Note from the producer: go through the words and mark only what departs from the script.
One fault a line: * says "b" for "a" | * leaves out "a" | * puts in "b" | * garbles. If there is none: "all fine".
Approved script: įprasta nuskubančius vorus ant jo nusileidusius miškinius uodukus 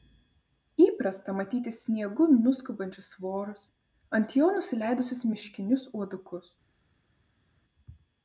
* puts in "matyti sniegu"